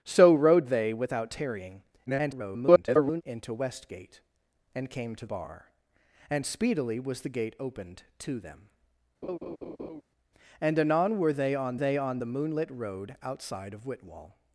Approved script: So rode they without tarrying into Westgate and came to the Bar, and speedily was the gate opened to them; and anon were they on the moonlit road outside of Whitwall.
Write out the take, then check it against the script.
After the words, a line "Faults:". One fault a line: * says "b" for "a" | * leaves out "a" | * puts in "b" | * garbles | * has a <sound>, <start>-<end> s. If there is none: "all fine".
So rode they without tarrying [garbled] into Westgate and came to Bar, and speedily was the gate opened to them; and anon were they on they on the moonlit road outside of Whitwall.
Faults:
* garbles
* leaves out "the"
* has a laugh, 9.2-10.0 s
* puts in "they on"